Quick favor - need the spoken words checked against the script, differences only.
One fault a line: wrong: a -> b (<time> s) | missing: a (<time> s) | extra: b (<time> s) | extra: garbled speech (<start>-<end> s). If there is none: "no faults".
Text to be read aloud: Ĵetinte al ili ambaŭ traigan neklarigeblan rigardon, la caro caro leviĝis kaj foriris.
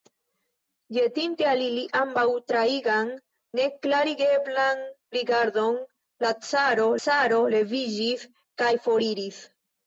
no faults